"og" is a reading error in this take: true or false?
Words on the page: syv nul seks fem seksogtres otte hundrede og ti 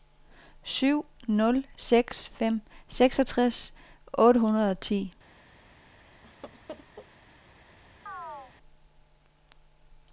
false